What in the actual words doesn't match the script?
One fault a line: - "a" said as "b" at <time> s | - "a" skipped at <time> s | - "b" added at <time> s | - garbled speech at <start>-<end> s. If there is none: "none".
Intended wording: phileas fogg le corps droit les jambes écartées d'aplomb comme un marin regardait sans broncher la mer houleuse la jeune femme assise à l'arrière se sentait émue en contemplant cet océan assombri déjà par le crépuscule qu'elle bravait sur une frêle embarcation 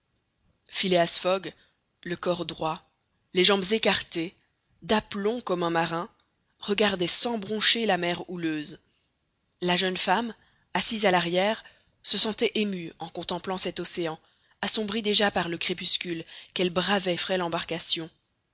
- "sur une" skipped at 17.2 s